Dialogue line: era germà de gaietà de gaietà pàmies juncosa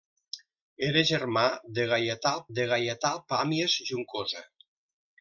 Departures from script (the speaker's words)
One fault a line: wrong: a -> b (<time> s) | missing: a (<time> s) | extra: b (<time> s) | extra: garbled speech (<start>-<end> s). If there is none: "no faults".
no faults